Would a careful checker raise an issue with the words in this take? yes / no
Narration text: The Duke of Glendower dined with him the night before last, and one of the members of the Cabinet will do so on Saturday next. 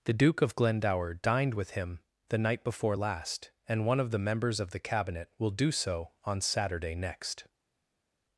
no